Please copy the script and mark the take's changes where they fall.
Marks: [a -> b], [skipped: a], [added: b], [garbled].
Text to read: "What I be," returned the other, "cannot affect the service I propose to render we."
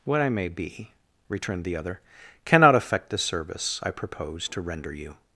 "What I [added: may] be," returned the other, "cannot affect the service I propose to render [we." -> you]